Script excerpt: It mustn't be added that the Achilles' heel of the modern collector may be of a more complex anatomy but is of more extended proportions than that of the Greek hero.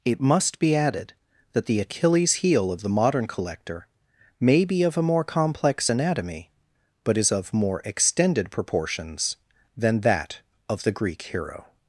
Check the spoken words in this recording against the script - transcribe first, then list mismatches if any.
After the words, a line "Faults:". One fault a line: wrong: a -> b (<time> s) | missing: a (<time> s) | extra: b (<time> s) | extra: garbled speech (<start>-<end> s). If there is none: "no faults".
It must be added that the Achilles' heel of the modern collector may be of a more complex anatomy but is of more extended proportions than that of the Greek hero.
Faults:
wrong: mustn't -> must (0.2 s)